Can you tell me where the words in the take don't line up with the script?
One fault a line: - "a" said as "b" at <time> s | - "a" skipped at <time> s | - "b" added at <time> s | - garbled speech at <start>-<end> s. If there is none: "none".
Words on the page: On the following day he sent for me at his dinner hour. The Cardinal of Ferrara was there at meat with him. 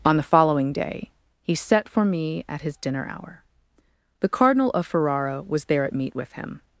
- "sent" said as "set" at 1.5 s